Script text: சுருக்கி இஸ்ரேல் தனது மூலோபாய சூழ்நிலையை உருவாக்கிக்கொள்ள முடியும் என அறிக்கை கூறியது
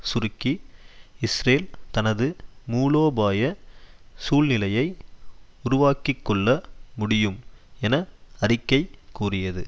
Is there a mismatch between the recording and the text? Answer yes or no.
no